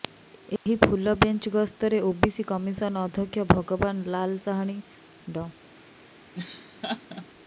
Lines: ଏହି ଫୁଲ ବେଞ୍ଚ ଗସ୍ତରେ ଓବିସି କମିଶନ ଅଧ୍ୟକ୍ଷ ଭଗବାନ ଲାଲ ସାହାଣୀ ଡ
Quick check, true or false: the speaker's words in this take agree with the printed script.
true